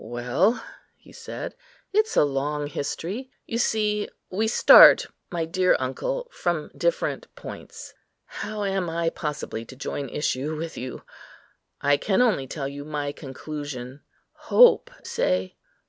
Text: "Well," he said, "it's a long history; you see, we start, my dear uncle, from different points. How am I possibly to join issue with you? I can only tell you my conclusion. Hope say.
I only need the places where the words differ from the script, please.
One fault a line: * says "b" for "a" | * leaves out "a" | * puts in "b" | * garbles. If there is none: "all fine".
all fine